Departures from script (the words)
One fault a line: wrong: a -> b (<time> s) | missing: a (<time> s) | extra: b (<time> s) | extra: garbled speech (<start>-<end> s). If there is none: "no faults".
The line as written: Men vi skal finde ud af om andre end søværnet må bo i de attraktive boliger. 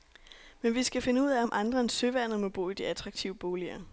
no faults